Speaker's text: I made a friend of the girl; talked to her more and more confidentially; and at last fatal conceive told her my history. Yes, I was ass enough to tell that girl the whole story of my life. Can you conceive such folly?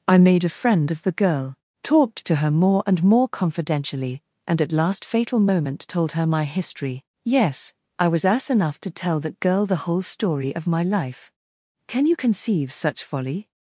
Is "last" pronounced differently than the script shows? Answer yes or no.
no